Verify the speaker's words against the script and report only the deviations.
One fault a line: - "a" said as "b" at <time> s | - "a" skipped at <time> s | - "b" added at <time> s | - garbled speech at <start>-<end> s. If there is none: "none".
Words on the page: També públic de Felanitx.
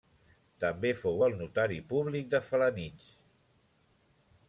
- "fou el notari" added at 1.0 s